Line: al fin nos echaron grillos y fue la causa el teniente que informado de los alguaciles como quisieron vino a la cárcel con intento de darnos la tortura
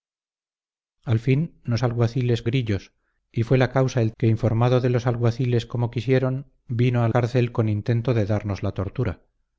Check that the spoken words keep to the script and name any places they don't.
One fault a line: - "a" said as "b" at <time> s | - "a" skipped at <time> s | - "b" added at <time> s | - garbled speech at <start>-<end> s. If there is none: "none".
- "echaron" said as "alguaciles" at 1.8 s
- "teniente" skipped at 4.1 s
- "la" skipped at 7.1 s